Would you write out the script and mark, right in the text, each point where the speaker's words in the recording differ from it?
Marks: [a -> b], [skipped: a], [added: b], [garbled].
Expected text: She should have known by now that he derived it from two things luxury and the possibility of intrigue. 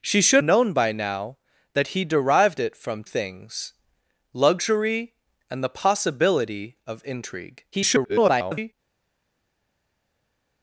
She should [skipped: have] known by now that he derived it from [skipped: two] things luxury and the possibility of intrigue. [garbled]